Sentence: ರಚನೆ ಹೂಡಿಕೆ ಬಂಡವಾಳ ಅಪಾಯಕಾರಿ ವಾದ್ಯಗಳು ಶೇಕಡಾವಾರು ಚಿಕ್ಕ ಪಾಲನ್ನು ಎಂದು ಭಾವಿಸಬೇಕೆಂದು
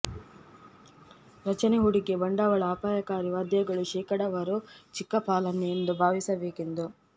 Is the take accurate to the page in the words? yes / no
yes